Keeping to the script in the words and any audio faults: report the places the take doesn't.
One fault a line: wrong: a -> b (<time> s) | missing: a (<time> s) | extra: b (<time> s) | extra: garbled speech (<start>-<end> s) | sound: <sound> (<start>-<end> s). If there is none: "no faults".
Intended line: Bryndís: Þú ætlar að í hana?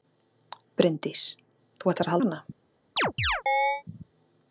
sound: chirp (3.0-3.8 s)